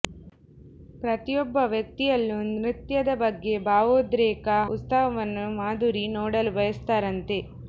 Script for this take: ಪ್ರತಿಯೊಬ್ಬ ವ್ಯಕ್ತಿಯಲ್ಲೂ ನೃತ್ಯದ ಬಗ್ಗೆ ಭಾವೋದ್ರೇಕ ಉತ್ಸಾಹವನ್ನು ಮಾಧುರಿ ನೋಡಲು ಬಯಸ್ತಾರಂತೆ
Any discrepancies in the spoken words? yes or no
no